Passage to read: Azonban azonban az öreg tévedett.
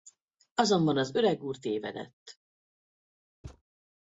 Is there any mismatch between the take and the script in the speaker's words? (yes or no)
yes